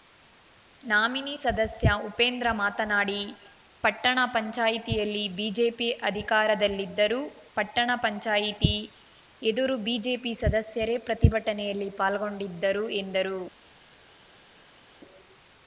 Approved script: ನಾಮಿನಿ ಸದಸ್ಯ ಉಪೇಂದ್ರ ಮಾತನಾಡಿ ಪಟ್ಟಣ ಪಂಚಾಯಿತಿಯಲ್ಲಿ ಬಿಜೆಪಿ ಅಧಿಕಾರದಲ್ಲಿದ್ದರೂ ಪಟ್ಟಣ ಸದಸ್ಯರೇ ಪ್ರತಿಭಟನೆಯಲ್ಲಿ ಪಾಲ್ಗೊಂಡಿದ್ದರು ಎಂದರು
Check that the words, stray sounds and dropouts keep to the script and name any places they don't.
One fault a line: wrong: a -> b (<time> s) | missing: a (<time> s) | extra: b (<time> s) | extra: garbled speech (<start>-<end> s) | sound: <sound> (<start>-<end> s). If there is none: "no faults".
extra: ಪಂಚಾಯಿತಿ ಎದುರು ಬಿಜೆಪಿ (8.0 s)